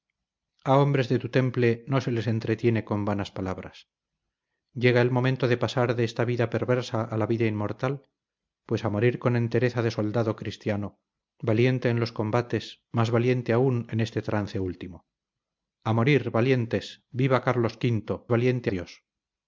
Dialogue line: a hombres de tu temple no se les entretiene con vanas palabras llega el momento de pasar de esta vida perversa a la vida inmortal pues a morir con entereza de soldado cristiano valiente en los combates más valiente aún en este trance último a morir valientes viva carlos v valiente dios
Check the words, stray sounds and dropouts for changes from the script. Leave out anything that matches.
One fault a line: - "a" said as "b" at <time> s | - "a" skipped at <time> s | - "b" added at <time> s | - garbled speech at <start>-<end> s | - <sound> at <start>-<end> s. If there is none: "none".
none